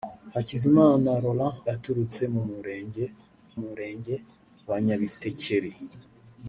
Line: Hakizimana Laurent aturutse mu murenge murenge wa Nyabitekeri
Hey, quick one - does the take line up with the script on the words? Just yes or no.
yes